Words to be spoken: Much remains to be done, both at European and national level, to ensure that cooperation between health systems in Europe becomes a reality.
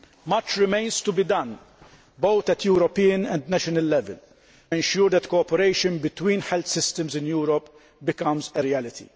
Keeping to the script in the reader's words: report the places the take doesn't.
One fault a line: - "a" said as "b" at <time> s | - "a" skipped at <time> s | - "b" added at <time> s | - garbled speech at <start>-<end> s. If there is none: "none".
- "to" skipped at 4.2 s